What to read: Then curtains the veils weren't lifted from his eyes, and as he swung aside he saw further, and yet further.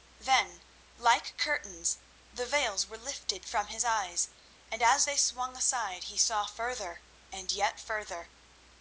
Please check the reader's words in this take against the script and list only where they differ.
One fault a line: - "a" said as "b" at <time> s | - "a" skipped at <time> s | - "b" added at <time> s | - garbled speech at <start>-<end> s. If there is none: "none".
- "like" added at 0.9 s
- "weren't" said as "were" at 2.9 s
- "he" said as "they" at 5.0 s